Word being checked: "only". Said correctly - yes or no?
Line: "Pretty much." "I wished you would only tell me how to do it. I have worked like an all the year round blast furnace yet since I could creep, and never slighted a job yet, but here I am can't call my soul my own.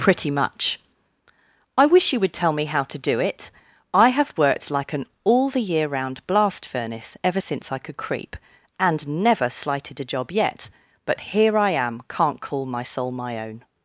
no